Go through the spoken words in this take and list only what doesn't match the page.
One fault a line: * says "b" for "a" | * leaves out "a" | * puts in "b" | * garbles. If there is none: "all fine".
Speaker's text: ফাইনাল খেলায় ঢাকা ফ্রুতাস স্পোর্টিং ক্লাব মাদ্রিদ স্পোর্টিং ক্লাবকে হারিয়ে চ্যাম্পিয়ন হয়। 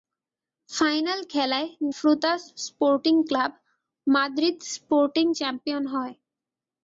* leaves out "ঢাকা"
* leaves out "ক্লাবকে হারিয়ে"